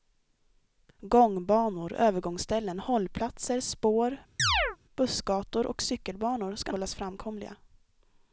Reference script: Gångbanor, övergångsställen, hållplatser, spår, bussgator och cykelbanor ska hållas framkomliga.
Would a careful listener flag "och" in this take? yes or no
no